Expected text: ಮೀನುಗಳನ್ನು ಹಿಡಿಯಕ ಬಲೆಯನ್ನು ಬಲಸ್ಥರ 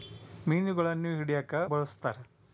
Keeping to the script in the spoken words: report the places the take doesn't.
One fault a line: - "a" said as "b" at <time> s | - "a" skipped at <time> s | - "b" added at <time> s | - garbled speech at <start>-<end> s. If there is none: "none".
- "ಬಲೆಯನ್ನು" skipped at 1.6 s